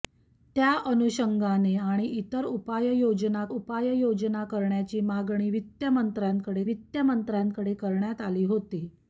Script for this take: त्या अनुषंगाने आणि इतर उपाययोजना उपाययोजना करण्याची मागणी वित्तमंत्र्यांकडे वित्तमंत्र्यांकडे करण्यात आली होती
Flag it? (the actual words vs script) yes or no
no